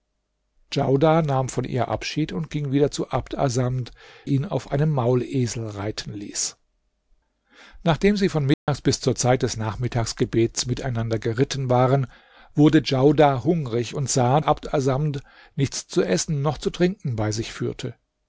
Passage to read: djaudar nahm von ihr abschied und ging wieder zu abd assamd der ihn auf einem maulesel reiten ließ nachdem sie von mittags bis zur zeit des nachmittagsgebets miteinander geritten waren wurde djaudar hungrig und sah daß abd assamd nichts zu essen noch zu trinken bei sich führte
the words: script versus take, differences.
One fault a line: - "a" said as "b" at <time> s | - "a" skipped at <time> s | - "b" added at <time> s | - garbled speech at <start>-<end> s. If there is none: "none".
- "der" skipped at 3.9 s
- "daß" skipped at 14.4 s